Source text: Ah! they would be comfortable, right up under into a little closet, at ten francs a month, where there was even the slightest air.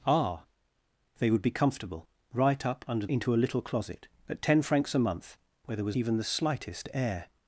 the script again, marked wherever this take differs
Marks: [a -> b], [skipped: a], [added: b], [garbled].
Ah! they would be comfortable, right up under into a little closet, at ten francs a month, where there was even the slightest air.